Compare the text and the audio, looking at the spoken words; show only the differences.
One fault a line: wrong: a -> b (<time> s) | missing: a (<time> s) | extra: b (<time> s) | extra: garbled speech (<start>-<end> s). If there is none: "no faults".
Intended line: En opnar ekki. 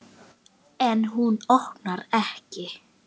extra: hún (1.1 s)